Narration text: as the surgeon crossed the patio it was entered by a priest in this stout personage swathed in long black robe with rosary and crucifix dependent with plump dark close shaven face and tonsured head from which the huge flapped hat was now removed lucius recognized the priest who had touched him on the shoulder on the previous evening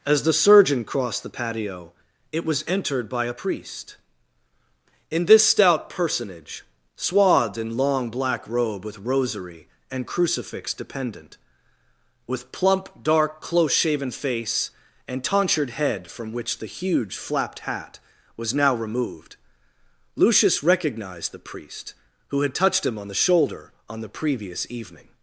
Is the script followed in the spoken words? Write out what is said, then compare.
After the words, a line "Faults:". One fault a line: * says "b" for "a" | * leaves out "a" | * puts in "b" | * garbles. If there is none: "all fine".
as the surgeon crossed the patio it was entered by a priest in this stout personage swathed in long black robe with rosary and crucifix dependent with plump dark close shaven face and tonsured head from which the huge flapped hat was now removed lucius recognized the priest who had touched him on the shoulder on the previous evening
Faults:
all fine